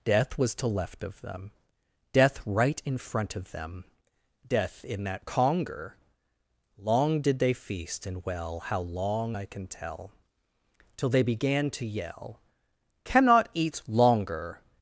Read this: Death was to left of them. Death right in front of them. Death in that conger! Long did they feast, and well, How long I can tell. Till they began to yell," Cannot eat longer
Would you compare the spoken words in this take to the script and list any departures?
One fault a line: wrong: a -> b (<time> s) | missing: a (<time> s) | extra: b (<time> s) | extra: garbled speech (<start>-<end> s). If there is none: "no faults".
no faults